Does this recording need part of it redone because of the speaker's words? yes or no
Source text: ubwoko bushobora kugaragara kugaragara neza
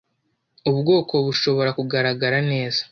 yes